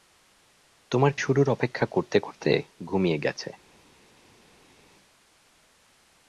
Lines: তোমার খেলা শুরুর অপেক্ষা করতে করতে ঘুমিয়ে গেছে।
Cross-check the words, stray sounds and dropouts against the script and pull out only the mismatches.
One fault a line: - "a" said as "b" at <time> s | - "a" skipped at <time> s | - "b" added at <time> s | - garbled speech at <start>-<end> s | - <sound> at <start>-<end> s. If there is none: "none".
- "খেলা" skipped at 1.1 s